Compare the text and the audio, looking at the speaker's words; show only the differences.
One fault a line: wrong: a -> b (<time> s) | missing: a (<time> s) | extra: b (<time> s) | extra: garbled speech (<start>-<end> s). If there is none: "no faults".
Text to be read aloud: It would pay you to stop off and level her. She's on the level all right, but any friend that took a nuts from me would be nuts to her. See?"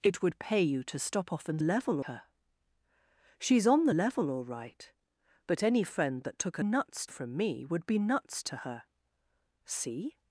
no faults